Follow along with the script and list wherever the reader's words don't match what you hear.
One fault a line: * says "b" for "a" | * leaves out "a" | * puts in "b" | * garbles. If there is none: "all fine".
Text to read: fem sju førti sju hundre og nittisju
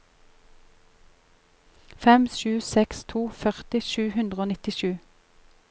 * puts in "seks to"